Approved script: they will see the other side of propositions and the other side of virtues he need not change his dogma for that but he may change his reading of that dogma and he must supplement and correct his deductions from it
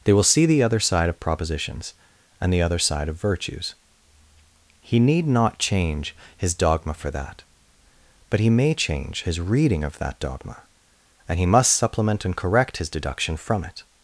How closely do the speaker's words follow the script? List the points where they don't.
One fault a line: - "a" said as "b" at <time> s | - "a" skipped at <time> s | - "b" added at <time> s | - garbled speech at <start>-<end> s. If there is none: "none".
- "deductions" said as "deduction" at 12.9 s